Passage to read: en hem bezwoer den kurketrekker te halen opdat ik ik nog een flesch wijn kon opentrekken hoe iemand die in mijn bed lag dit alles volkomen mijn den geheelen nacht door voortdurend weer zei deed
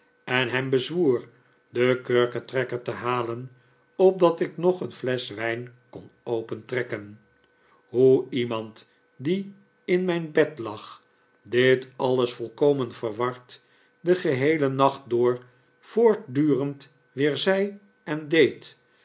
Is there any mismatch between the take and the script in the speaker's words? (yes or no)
yes